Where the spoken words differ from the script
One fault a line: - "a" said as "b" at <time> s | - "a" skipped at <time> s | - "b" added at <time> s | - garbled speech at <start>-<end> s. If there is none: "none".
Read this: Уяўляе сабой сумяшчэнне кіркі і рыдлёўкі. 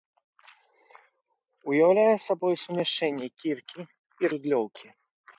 none